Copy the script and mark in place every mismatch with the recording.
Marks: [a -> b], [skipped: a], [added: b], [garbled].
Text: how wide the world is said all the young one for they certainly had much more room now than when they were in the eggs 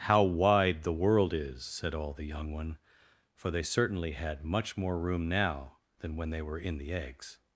how wide the world is said all the young one for they certainly had much more room now than when they were in the eggs